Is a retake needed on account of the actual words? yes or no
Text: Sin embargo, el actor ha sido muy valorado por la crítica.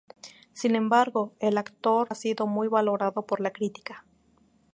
no